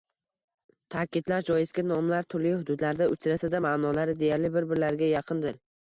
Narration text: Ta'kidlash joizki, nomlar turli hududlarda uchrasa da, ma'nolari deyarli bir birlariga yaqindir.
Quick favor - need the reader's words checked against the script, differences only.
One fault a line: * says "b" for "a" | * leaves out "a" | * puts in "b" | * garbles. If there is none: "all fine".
all fine